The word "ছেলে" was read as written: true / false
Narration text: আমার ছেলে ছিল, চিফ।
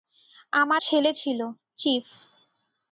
true